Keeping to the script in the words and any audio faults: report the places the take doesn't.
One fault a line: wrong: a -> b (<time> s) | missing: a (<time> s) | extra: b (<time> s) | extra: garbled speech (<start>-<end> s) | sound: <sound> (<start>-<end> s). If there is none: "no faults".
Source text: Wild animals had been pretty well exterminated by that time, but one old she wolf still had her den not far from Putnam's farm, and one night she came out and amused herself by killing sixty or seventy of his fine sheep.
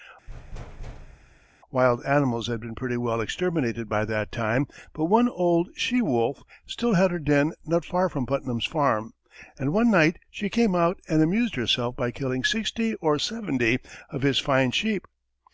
sound: thud (0.3-1.5 s)